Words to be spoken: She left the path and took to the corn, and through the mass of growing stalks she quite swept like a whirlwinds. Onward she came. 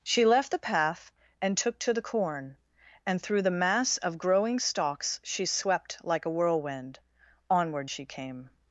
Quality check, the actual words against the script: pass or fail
fail